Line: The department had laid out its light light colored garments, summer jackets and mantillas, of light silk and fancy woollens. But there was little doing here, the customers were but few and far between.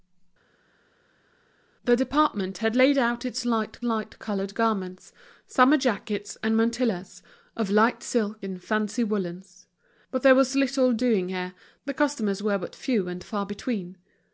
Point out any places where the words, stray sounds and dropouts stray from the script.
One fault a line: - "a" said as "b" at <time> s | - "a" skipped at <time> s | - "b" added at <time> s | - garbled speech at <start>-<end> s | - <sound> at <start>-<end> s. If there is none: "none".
none